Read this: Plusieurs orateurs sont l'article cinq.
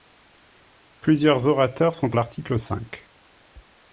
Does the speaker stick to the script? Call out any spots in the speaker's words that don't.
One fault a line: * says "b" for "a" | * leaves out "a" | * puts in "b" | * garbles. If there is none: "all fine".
all fine